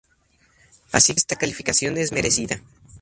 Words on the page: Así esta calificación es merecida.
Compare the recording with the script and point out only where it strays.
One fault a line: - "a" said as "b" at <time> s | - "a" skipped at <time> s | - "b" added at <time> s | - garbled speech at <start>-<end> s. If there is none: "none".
none